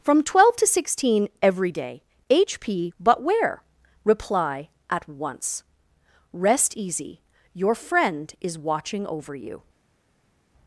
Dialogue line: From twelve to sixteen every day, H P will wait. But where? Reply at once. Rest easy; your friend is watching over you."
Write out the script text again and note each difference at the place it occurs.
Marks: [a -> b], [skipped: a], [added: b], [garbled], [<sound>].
From twelve to sixteen every day, H P [skipped: will wait.] But where? Reply at once. Rest easy; your friend is watching over you."